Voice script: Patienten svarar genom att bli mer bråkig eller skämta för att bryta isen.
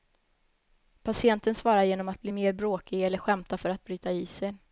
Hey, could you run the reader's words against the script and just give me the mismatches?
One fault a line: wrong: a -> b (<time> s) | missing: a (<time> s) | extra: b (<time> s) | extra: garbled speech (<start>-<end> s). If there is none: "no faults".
no faults